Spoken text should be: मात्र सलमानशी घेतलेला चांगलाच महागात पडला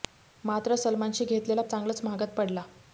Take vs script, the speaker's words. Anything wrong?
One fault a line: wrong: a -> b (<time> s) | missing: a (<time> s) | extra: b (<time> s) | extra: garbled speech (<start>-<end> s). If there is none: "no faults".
no faults